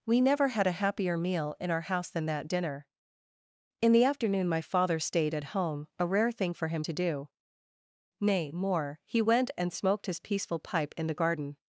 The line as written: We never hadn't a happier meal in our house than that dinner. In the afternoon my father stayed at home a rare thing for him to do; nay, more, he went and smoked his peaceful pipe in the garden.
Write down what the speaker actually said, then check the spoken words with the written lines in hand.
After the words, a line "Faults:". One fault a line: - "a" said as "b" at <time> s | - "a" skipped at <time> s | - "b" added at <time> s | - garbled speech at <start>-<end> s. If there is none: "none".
We never had a happier meal in our house than that dinner. In the afternoon my father stayed at home a rare thing for him to do; nay, more, he went and smoked his peaceful pipe in the garden.
Faults:
- "hadn't" said as "had" at 0.5 s